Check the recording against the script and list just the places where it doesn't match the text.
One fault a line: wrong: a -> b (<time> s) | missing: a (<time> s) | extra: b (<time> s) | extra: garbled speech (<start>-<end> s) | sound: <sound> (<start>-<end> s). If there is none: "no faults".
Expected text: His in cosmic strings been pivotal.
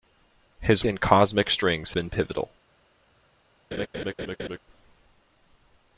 sound: laugh (3.7-4.6 s)